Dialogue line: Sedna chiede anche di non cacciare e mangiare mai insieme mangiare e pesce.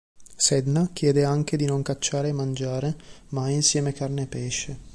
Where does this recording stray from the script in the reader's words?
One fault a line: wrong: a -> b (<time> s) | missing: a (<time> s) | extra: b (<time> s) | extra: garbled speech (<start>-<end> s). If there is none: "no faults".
wrong: mangiare -> carne (3.9 s)